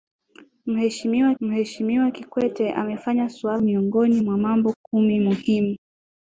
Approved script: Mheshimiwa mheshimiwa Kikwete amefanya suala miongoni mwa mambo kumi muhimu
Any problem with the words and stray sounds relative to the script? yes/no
no